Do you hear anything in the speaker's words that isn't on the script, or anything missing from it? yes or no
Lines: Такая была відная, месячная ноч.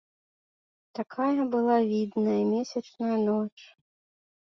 no